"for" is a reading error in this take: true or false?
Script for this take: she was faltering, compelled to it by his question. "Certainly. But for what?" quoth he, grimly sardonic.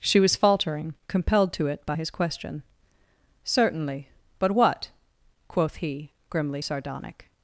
true